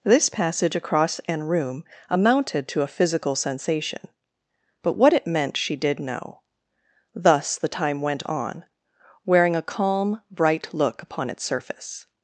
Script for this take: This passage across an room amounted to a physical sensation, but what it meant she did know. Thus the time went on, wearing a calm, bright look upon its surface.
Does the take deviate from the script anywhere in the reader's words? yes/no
no